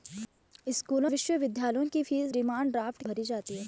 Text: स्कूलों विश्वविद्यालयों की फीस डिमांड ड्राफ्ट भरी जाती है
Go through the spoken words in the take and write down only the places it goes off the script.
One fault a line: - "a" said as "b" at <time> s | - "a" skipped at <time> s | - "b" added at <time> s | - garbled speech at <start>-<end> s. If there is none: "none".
none